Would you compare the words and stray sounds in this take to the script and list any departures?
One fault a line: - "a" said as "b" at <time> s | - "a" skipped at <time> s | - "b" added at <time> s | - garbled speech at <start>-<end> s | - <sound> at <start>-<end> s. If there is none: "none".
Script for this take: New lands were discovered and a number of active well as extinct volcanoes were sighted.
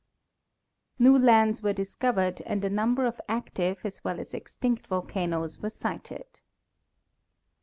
- "as" added at 3.9 s